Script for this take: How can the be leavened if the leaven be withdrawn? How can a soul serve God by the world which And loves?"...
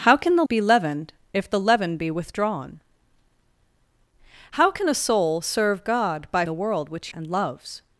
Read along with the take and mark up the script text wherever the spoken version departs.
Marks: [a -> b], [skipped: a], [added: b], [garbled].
How can the be leavened if the leaven be withdrawn? How can a soul serve God by the world which And loves?"...